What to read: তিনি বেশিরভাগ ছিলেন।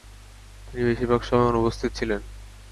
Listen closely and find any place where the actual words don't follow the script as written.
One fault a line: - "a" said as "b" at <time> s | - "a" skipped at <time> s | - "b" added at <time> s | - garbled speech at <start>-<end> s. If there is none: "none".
- "সময় অনুপস্থিত" added at 1.2 s